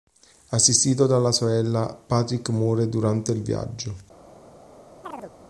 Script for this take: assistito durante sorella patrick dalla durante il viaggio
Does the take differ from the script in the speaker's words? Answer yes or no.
yes